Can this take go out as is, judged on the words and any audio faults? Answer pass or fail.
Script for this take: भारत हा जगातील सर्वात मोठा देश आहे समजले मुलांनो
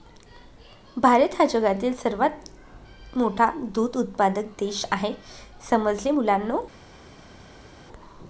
fail